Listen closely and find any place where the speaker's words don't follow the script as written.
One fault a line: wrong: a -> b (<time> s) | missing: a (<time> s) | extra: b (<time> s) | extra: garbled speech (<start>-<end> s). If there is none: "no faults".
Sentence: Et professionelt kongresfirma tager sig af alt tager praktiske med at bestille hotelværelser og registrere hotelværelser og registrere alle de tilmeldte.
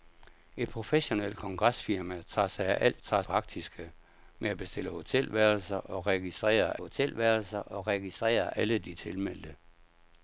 no faults